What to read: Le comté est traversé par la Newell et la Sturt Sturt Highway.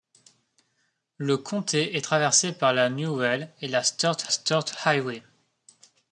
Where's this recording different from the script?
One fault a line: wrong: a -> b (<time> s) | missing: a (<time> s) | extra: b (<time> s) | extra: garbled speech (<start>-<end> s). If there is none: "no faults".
no faults